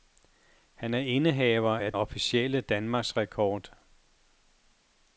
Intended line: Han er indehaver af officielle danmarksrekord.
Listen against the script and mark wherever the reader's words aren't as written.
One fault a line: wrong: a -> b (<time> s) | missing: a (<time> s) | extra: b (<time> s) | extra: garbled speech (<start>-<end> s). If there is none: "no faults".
no faults